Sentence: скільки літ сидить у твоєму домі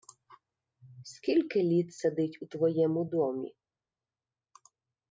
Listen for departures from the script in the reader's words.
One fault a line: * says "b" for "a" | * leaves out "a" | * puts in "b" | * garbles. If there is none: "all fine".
all fine